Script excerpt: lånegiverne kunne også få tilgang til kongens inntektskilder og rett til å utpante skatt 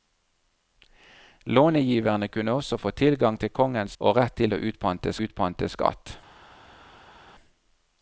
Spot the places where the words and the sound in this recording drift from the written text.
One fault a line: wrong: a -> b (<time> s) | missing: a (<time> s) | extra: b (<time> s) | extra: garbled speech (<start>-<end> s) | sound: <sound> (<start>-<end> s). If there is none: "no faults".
missing: inntektskilder (4.0 s)
extra: utpante (5.3 s)